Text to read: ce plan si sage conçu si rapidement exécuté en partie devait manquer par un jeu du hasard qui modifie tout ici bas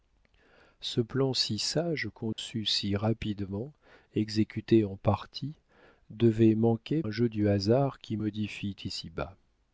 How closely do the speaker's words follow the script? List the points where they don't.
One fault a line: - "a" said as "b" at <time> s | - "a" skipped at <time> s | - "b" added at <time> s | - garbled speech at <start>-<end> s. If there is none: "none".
- "par" skipped at 7.0 s
- "tout" skipped at 8.8 s